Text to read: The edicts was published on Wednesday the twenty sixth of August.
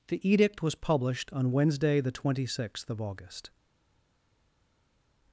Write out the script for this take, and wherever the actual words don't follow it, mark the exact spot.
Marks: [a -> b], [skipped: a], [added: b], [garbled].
The [edicts -> edict] was published on Wednesday the twenty sixth of August.